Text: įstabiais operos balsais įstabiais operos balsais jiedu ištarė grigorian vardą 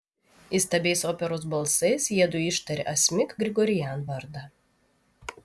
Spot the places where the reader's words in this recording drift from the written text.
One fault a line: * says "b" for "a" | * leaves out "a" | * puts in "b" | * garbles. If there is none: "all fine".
* leaves out "įstabiais operos balsais"
* puts in "asmik"